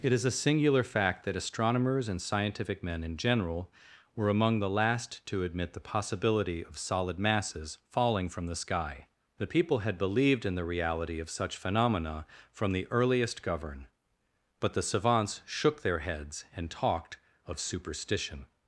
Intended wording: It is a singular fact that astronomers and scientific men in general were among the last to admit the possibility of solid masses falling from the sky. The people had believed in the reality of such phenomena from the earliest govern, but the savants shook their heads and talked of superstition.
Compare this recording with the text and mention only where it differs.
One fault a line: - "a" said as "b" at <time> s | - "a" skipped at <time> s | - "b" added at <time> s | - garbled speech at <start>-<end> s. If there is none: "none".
none